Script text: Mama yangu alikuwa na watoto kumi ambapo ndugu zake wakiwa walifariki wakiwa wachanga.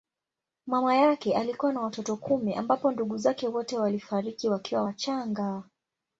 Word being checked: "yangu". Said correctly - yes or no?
no